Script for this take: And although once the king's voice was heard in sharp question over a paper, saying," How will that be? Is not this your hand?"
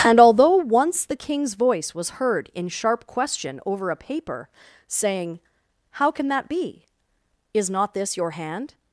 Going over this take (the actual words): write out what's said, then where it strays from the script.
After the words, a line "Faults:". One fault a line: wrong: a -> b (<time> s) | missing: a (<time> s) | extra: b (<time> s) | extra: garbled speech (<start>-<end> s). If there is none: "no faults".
And although once the king's voice was heard in sharp question over a paper, saying," How can that be? Is not this your hand?"
Faults:
wrong: will -> can (6.1 s)